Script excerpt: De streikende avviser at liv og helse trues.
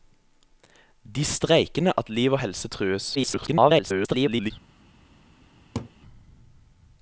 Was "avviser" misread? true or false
true